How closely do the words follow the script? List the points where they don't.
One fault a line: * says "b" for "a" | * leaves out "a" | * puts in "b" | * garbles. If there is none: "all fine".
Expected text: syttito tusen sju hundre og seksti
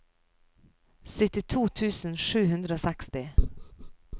all fine